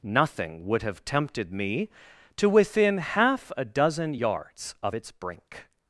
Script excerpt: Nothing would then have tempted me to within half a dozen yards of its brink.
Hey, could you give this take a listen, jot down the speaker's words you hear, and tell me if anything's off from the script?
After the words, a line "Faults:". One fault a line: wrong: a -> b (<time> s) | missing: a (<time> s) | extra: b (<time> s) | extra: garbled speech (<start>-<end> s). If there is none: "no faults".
Nothing would have tempted me to within half a dozen yards of its brink.
Faults:
missing: then (0.8 s)